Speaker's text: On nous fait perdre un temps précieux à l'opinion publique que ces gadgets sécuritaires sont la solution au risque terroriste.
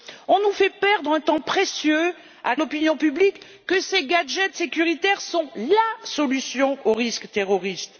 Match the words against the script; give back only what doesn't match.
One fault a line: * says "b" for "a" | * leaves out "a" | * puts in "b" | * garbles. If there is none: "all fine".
all fine